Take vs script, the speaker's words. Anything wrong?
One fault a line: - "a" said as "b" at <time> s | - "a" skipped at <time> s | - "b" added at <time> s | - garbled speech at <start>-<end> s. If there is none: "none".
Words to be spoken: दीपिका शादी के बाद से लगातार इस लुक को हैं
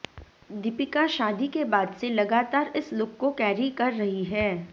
- "कैरी कर रही" added at 3.3 s